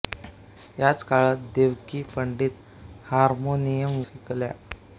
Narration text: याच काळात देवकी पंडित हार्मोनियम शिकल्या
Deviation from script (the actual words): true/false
false